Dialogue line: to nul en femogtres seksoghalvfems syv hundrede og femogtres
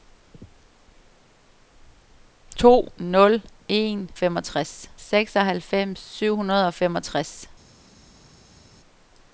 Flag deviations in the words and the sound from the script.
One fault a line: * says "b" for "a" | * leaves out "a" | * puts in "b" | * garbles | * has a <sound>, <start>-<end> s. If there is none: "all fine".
all fine